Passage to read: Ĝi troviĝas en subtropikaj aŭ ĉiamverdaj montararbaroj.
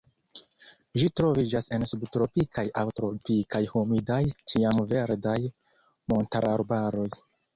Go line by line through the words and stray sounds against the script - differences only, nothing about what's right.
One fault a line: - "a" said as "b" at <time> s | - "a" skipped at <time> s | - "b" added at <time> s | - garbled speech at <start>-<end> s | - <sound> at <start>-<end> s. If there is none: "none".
- "tropikaj humidaj" added at 3.0 s